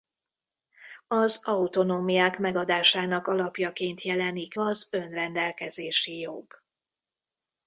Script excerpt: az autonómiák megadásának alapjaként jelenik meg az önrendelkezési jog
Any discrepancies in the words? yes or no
yes